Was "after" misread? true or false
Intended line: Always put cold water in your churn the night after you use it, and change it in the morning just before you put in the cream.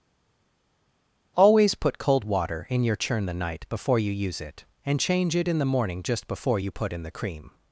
true